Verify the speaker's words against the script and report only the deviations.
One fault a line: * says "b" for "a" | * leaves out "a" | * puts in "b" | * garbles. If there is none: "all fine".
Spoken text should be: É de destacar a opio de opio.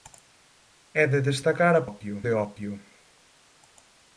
all fine